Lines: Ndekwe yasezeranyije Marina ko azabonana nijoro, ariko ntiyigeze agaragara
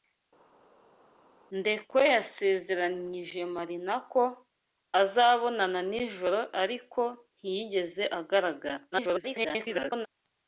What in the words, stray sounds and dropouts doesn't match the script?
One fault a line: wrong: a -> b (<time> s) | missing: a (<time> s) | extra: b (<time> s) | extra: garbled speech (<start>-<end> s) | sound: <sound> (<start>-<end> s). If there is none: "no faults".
extra: garbled speech (8.9-10.1 s)